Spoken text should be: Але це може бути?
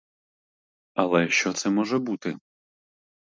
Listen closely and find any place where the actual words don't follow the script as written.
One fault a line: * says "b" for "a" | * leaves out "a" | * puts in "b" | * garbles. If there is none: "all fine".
* puts in "що"